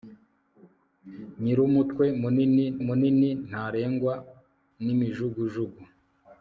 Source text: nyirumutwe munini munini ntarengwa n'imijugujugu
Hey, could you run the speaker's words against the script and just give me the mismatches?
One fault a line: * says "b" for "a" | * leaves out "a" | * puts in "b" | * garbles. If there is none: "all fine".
all fine